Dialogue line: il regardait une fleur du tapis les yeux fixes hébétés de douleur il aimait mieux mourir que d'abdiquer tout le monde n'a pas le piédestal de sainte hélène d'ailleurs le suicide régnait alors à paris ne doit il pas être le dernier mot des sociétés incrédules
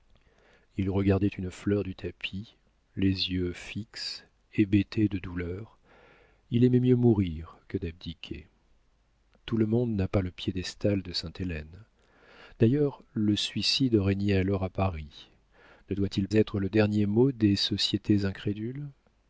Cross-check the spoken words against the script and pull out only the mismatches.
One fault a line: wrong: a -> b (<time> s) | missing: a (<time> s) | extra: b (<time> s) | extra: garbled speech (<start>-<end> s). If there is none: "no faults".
missing: pas (16.3 s)